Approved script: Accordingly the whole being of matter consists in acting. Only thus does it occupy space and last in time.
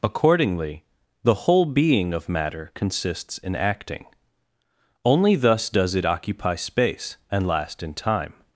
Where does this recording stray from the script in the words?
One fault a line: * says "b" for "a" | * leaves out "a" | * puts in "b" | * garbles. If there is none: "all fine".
all fine